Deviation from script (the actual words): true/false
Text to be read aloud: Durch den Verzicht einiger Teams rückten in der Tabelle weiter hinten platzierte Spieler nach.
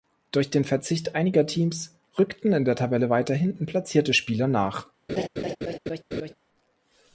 false